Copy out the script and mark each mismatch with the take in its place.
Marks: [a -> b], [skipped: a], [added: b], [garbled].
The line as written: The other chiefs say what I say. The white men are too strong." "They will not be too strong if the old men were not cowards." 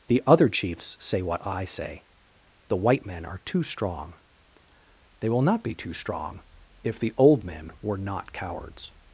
The other chiefs say what I say. The white men are too strong." "They will not be too strong if the old men were not cowards."